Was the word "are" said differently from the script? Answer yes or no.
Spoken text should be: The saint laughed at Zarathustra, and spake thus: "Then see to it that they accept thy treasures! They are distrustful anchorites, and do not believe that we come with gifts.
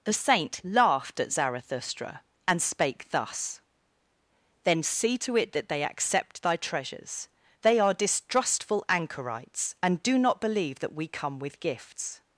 no